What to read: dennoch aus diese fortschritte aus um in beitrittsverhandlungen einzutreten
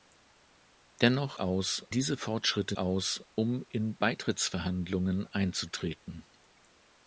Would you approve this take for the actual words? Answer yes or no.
yes